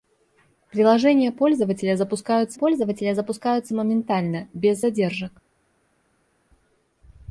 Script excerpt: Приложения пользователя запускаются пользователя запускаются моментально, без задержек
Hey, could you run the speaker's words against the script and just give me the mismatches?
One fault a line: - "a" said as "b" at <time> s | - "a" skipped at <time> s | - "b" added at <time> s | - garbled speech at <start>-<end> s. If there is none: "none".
none